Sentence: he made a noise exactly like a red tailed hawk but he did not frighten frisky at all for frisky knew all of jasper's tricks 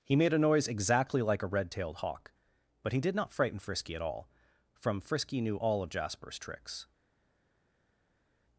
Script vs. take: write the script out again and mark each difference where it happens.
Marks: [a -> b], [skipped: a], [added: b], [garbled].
he made a noise exactly like a red tailed hawk but he did not frighten frisky at all [for -> from] frisky knew all of jasper's tricks